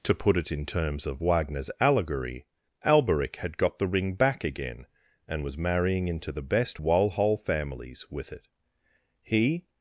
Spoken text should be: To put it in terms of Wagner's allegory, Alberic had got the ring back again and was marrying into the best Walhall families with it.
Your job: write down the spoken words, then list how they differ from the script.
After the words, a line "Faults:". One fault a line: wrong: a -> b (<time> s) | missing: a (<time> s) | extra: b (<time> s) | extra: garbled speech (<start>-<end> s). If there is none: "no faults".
To put it in terms of Wagner's allegory, Alberic had got the ring back again and was marrying into the best Walhall families with it. He
Faults:
extra: He (9.2 s)